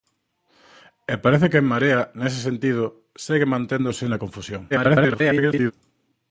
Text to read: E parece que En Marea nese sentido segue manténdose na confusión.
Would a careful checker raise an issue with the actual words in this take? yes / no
yes